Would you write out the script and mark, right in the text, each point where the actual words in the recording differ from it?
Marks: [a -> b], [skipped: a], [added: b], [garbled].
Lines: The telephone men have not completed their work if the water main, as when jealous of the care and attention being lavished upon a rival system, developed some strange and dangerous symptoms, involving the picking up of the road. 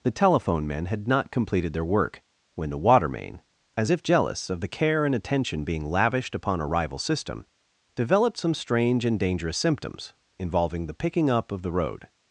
The telephone men [have -> had] not completed their work [if -> when] the water main, as [when -> if] jealous of the care and attention being lavished upon a rival system, developed some strange and dangerous symptoms, involving the picking up of the road.